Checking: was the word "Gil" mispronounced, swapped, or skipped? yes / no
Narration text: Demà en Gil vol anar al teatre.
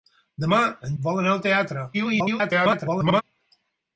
yes